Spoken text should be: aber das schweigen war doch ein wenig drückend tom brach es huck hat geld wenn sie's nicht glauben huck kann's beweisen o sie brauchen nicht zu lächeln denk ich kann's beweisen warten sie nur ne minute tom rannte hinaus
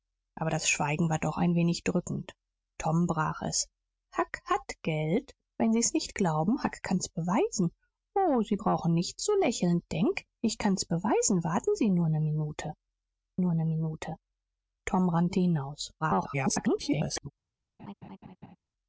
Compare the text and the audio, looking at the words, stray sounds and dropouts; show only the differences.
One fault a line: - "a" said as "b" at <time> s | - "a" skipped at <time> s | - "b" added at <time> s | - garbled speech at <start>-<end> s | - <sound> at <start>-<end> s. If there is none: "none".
- "nur ne minute" added at 13.4 s
- garbled speech at 16.0-17.3 s
- laugh at 17.8-18.6 s